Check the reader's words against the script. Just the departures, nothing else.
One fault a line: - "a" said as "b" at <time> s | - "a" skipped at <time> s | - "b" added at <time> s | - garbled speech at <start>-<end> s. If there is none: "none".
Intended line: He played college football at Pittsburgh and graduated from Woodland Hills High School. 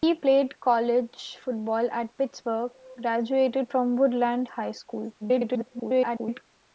- "and" skipped at 2.7 s
- "Hills" skipped at 4.5 s
- garbled speech at 5.2-6.4 s